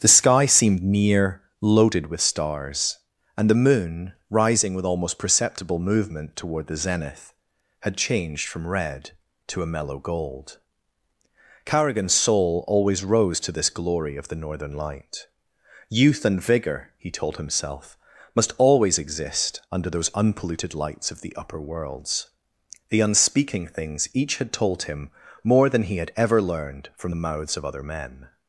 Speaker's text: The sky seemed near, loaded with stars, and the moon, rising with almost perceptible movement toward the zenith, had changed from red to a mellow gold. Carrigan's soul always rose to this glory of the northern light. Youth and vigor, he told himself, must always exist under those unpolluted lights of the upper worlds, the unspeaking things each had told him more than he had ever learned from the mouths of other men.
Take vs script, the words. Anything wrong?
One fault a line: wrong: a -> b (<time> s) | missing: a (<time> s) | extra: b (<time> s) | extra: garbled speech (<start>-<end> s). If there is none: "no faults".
no faults